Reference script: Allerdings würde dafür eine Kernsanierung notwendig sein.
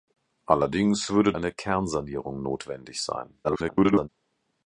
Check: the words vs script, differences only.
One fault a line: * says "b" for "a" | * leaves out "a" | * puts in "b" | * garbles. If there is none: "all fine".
* leaves out "dafür"
* garbles